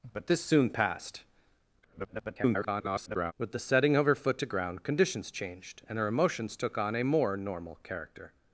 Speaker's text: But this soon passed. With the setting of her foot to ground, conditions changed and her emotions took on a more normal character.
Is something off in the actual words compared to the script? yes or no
yes